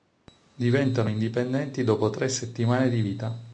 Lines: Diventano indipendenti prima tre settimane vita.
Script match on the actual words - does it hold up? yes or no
no